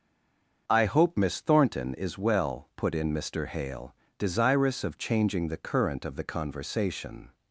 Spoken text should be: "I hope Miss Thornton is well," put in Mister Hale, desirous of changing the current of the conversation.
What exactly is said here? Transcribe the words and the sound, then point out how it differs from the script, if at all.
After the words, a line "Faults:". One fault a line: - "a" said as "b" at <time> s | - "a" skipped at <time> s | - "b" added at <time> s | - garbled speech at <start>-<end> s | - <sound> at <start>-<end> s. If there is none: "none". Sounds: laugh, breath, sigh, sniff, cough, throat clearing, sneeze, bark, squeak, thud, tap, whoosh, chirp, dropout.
"I hope Miss Thornton is well," put in Mister Hale, desirous of changing the current of the conversation.
Faults:
none